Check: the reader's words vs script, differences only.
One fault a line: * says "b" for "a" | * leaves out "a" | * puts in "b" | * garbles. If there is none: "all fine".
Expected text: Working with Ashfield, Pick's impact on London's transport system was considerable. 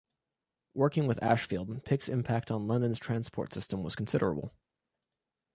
all fine